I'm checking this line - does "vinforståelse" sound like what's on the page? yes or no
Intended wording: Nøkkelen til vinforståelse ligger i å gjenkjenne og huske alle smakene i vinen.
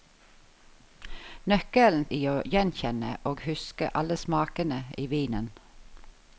no